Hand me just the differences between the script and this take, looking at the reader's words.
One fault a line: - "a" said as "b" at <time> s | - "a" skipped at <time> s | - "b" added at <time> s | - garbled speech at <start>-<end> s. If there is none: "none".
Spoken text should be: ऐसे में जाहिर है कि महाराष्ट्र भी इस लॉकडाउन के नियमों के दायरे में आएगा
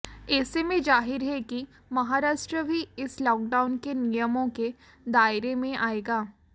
none